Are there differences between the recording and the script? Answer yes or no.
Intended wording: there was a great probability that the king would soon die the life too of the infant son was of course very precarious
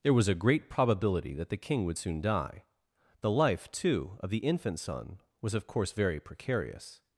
no